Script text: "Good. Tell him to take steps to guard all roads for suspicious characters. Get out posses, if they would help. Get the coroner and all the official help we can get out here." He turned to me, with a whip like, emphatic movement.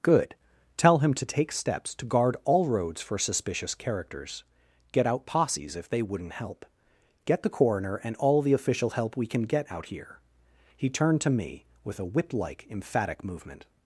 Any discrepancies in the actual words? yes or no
yes